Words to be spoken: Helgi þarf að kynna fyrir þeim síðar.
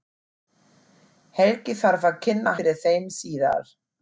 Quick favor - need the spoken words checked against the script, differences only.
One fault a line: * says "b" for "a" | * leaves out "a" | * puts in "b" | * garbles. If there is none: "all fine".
all fine